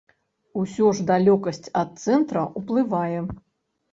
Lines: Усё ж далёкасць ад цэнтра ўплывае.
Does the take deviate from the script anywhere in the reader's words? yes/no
no